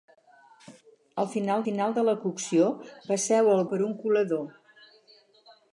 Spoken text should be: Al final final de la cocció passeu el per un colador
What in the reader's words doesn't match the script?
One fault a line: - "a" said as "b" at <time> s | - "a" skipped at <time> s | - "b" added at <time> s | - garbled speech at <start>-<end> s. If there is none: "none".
none